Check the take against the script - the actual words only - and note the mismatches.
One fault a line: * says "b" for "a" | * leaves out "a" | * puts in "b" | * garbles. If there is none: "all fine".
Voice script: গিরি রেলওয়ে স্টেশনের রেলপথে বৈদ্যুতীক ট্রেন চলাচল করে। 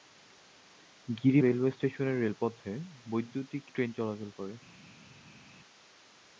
all fine